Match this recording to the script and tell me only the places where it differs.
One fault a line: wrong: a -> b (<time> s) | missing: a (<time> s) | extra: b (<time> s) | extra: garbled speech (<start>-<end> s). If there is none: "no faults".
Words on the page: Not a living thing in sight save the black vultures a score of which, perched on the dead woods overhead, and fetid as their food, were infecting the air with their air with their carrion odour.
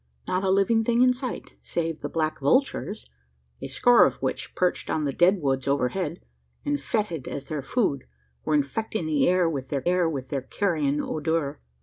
no faults